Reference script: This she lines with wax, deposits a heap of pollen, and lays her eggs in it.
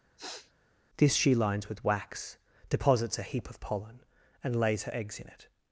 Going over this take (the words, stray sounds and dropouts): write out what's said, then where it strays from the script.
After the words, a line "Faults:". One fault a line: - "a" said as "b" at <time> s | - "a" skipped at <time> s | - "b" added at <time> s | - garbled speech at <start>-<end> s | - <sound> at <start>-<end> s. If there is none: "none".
This she lines with wax, deposits a heap of pollen, and lays her eggs in it.
Faults:
- sniff at 0.2-0.5 s